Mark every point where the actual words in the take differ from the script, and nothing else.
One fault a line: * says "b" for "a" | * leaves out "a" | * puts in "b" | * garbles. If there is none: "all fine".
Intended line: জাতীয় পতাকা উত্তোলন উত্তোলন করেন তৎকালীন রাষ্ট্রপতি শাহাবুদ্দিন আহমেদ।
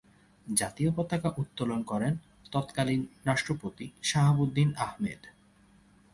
* leaves out "উত্তোলন"